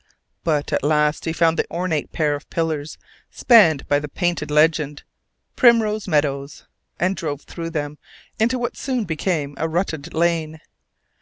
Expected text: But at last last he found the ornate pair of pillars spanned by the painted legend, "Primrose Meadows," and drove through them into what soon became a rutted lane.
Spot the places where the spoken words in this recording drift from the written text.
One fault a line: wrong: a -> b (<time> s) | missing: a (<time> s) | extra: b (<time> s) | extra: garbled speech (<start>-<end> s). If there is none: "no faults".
missing: last (1.2 s)